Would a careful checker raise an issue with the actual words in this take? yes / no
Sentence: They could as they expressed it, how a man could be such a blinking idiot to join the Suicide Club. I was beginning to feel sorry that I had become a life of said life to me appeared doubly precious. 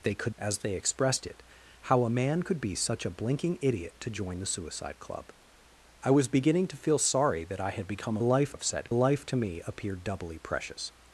no